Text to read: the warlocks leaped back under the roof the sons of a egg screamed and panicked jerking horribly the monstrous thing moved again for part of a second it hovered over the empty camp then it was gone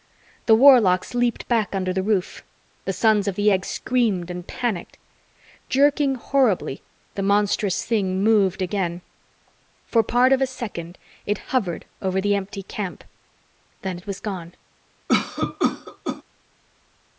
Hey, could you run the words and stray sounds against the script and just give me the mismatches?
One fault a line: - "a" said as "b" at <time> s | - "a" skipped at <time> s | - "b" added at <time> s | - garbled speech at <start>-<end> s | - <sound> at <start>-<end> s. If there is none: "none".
- "a" said as "the" at 3.4 s
- cough at 15.1-16.2 s